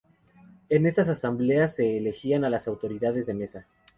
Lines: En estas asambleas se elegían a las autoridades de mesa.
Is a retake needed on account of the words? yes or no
no